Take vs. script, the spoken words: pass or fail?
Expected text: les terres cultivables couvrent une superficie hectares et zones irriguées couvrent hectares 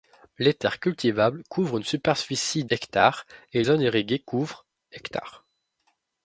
pass